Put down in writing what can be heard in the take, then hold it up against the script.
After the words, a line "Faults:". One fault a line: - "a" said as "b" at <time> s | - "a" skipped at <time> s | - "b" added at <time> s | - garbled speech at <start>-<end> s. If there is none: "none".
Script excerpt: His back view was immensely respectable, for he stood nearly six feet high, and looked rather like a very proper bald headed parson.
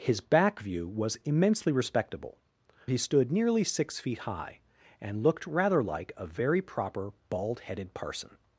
His back view was immensely respectable, he stood nearly six feet high, and looked rather like a very proper bald headed parson.
Faults:
- "for" skipped at 2.4 s